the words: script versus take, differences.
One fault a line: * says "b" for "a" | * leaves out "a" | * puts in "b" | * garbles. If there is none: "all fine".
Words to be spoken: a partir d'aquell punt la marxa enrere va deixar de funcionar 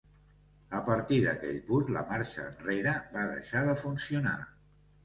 all fine